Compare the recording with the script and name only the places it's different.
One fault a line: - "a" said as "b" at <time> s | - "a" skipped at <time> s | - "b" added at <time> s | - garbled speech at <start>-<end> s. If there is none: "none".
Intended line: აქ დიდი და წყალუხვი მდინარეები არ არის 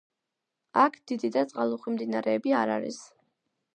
none